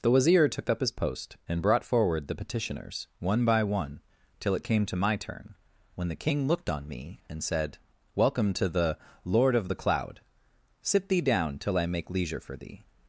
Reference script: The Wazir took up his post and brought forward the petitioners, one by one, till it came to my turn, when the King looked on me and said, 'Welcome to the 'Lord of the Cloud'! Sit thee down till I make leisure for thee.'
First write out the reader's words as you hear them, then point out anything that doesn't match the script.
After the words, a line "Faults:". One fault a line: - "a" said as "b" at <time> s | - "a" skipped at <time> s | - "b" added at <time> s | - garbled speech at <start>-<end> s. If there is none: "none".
The Wazir took up his post and brought forward the petitioners, one by one, till it came to my turn, when the King looked on me and said, 'Welcome to the 'Lord of the Cloud'! Sit thee down till I make leisure for thee.'
Faults:
none